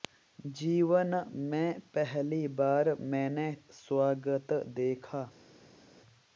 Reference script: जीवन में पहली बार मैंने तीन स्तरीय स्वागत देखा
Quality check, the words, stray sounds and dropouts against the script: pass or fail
fail